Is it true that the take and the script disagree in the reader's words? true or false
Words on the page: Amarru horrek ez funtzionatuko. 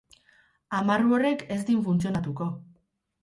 true